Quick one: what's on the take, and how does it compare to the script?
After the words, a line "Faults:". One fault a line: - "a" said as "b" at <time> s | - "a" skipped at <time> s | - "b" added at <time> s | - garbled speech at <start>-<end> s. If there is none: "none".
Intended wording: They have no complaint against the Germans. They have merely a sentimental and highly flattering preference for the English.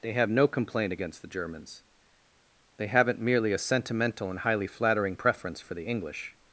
They have no complaint against the Germans. They haven't merely a sentimental and highly flattering preference for the English.
Faults:
- "have" said as "haven't" at 2.9 s